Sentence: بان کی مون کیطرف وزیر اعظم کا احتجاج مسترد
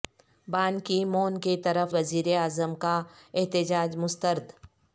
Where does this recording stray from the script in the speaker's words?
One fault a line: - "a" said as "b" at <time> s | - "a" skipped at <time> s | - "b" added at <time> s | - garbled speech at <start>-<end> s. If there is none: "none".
none